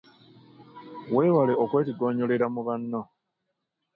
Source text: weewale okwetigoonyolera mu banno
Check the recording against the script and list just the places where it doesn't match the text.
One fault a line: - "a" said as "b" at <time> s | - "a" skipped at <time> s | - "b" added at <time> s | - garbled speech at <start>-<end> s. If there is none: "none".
none